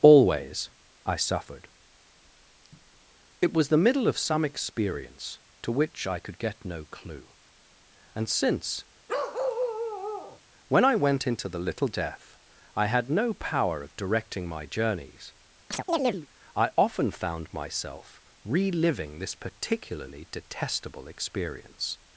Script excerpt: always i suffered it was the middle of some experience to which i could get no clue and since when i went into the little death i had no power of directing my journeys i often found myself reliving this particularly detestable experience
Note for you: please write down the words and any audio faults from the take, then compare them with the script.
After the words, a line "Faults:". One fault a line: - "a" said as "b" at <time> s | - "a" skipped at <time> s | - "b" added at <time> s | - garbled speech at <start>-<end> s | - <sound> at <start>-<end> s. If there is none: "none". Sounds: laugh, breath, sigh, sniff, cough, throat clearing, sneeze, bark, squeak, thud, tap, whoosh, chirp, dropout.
always i suffered it was the middle of some experience to which i could get no clue and since when i went into the little death i had no power of directing my journeys i often found myself reliving this particularly detestable experience
Faults:
- bark at 9.1-10.4 s
- chirp at 15.7-16.3 s